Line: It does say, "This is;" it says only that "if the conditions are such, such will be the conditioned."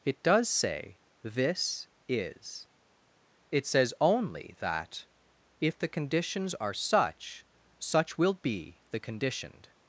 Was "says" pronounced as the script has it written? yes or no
yes